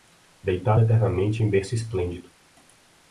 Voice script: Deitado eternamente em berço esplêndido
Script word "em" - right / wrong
right